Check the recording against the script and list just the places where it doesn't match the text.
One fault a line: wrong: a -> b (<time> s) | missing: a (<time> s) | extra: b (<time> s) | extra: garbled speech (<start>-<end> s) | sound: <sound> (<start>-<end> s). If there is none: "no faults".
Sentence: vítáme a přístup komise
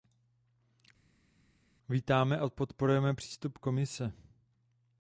extra: podporujeme (2.5 s)